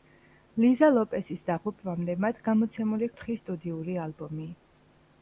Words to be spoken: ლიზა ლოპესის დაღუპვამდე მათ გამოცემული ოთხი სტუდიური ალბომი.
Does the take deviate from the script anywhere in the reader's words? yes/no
no